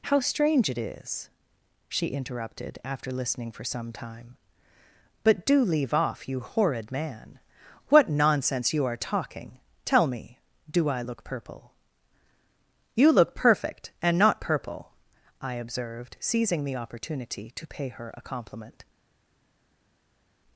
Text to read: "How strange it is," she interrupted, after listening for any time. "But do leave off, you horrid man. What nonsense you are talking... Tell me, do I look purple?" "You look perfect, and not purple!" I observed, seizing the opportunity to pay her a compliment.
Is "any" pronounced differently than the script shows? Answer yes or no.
yes